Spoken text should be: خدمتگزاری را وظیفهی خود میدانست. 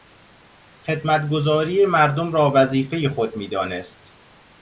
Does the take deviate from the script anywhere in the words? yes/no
yes